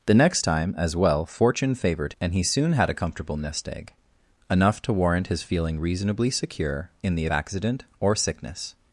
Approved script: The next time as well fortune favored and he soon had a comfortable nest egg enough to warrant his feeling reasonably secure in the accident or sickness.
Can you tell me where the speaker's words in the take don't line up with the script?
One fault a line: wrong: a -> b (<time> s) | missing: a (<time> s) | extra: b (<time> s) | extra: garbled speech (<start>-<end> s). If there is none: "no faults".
no faults